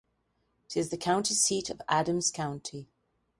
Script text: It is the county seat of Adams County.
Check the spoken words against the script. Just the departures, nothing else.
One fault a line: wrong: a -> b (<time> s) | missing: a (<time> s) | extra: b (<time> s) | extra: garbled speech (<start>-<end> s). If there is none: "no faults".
no faults